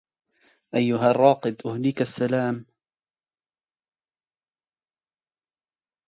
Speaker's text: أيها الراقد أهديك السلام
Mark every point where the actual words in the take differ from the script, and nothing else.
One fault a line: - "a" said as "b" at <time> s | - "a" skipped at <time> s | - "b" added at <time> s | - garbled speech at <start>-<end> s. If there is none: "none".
none